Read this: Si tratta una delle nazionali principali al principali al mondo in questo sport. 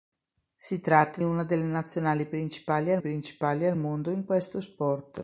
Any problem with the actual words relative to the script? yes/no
no